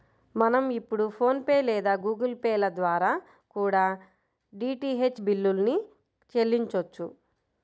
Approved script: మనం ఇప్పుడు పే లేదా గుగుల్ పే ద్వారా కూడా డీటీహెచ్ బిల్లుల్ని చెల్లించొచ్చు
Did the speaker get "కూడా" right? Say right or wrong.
right